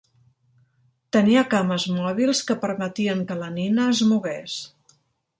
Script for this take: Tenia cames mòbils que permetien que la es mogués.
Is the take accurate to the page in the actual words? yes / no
no